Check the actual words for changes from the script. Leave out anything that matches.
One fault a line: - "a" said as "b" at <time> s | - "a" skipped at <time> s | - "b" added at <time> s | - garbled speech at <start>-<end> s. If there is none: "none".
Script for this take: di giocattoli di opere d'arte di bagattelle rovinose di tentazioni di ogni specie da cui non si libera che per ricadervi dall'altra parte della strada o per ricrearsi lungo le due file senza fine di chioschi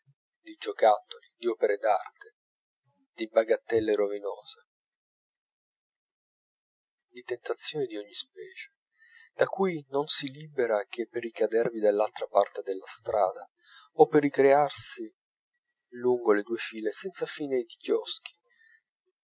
none